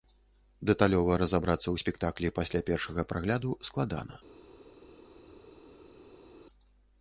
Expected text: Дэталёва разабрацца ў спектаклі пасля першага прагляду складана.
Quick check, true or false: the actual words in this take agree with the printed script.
true